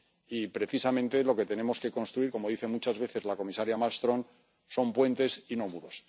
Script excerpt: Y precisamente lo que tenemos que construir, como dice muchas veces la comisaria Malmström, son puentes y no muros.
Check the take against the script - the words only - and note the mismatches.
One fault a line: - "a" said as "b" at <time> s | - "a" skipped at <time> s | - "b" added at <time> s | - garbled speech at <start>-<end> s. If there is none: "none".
none